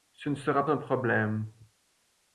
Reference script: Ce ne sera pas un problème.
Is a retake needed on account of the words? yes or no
yes